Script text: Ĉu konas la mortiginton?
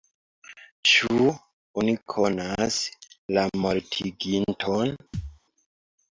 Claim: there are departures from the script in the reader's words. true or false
true